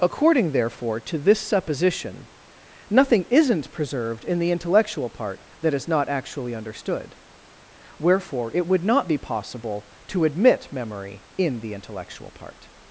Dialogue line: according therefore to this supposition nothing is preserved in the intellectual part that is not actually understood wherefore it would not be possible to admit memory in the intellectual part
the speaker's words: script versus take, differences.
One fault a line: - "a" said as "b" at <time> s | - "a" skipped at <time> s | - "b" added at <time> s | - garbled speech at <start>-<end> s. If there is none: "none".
- "is" said as "isn't" at 3.3 s